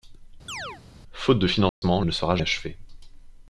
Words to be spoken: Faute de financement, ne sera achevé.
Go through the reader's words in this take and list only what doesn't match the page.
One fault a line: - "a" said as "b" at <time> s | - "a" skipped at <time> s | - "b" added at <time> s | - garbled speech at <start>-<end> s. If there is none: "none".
none